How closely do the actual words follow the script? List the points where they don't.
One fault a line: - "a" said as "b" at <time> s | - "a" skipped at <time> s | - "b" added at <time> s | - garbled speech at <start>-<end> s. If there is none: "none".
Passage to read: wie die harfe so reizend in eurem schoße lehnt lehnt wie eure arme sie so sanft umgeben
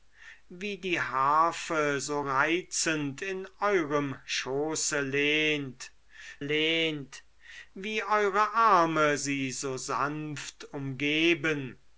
none